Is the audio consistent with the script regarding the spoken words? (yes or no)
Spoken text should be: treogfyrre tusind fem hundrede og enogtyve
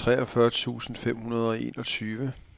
yes